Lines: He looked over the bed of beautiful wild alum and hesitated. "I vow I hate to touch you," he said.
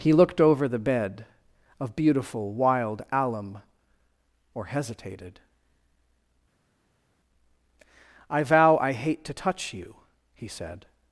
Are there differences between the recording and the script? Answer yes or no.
yes